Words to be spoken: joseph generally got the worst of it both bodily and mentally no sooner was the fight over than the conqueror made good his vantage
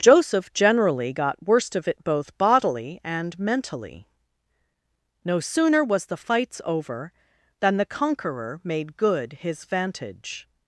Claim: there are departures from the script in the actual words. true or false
true